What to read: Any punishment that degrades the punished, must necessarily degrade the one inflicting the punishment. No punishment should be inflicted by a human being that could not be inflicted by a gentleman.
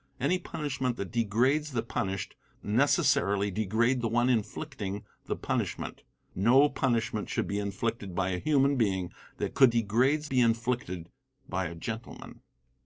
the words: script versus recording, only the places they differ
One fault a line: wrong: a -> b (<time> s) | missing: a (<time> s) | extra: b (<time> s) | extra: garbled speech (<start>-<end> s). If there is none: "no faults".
missing: must (2.3 s)
wrong: not -> degrades (9.7 s)